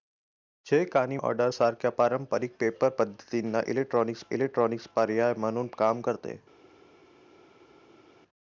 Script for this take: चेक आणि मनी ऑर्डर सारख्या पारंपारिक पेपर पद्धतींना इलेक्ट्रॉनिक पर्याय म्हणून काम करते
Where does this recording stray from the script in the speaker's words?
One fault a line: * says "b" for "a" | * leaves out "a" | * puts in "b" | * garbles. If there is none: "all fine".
* leaves out "मनी"
* puts in "इलेक्ट्रॉनिक"